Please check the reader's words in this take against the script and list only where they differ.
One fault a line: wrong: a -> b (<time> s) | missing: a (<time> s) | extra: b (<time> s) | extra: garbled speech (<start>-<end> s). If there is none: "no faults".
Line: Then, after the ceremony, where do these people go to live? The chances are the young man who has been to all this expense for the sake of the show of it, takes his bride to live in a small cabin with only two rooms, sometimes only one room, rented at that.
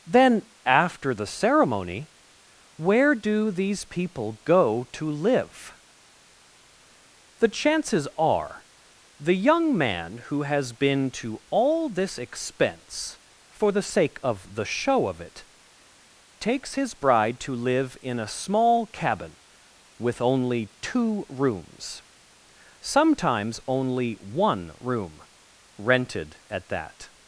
no faults